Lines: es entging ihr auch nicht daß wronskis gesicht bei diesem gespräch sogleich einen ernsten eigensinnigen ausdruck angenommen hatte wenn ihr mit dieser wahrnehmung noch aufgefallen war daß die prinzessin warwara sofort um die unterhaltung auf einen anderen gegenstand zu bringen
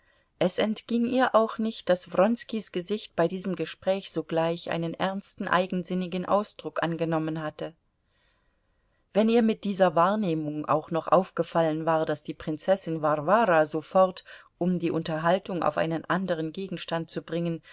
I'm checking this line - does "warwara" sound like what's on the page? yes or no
yes